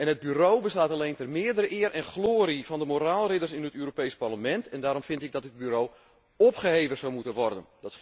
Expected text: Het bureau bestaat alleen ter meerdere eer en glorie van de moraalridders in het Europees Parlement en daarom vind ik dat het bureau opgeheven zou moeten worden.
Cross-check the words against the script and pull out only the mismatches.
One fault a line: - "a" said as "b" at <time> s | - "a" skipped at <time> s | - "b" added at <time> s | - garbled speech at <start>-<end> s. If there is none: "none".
none